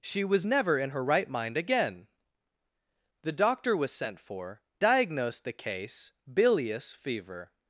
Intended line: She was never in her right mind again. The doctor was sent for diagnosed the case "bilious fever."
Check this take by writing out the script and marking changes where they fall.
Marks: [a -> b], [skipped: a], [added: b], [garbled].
She was never in her right mind again. The doctor was sent for diagnosed the case "bilious fever."